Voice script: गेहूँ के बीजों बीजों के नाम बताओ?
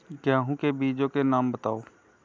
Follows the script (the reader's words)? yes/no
no